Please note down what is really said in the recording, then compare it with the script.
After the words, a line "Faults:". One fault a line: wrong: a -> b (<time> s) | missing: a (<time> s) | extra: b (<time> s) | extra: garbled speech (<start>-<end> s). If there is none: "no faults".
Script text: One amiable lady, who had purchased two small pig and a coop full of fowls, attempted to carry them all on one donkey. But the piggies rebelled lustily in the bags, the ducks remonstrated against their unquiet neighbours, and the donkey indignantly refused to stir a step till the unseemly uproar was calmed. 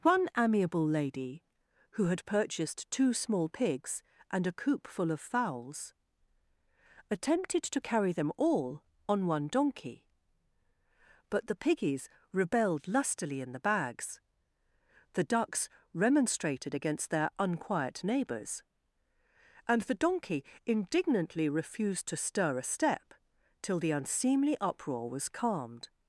One amiable lady, who had purchased two small pigs and a coop full of fowls, attempted to carry them all on one donkey. But the piggies rebelled lustily in the bags, the ducks remonstrated against their unquiet neighbours, and the donkey indignantly refused to stir a step till the unseemly uproar was calmed.
Faults:
wrong: pig -> pigs (3.5 s)